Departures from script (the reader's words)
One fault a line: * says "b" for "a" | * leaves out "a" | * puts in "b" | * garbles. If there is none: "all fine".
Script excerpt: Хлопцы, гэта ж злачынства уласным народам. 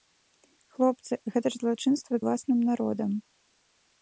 all fine